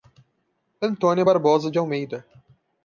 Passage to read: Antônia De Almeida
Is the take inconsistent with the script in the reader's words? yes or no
yes